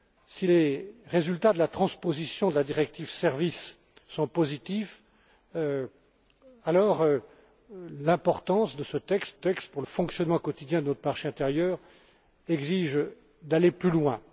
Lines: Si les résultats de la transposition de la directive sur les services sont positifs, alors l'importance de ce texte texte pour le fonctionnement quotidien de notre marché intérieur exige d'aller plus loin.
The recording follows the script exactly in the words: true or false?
true